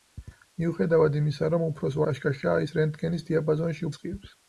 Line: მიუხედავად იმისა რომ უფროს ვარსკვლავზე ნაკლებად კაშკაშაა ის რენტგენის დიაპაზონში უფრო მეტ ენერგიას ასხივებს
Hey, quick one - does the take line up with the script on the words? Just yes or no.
no